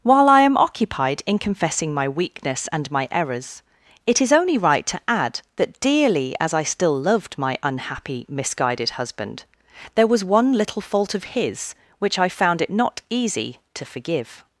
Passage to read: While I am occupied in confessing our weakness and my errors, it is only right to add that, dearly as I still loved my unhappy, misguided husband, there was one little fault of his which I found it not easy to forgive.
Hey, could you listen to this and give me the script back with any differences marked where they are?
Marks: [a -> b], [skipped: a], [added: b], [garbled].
While I am occupied in confessing [our -> my] weakness and my errors, it is only right to add that, dearly as I still loved my unhappy, misguided husband, there was one little fault of his which I found it not easy to forgive.